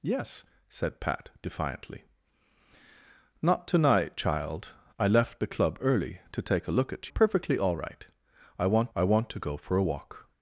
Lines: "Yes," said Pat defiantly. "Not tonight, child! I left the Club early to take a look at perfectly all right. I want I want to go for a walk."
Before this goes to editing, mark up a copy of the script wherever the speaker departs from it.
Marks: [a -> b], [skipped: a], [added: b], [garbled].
"Yes," said Pat defiantly. "Not tonight, child! I left the Club early to take a look at perfectly all right. I want I want to go for a walk."